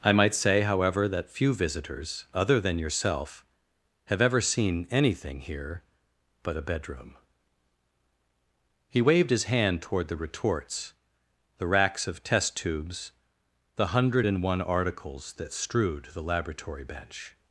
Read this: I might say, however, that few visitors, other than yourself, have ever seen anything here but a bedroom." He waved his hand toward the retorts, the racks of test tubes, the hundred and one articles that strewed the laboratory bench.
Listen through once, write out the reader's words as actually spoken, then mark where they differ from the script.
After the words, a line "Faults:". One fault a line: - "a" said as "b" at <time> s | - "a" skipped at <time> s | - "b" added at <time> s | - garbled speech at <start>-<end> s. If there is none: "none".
I might say, however, that few visitors, other than yourself, have ever seen anything here but a bedroom." He waved his hand toward the retorts, the racks of test tubes, the hundred and one articles that strewed the laboratory bench.
Faults:
none